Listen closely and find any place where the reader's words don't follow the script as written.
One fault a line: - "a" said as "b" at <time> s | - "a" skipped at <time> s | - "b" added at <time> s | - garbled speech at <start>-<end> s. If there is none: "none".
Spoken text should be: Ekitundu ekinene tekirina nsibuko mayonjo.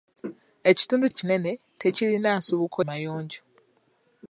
none